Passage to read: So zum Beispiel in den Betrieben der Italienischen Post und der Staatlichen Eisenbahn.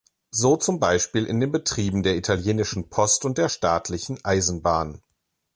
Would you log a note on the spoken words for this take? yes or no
no